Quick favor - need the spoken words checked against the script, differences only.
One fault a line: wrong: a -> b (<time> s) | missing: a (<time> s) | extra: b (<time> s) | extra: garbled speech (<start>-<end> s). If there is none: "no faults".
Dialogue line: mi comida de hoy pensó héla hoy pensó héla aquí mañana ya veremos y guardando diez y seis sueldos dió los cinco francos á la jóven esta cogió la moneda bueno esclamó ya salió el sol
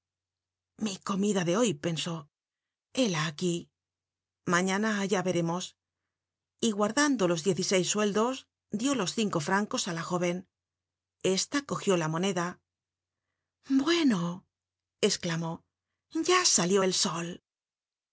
missing: hoy pensó héla (3.2 s)
extra: los (7.3 s)